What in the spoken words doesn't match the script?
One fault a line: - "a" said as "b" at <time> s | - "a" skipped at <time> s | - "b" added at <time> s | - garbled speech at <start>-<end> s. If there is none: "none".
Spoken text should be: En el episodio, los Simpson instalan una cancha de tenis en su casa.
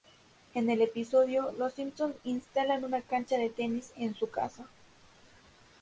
none